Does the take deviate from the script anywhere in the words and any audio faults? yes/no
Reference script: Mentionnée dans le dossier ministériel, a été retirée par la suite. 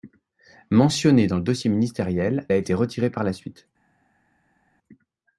no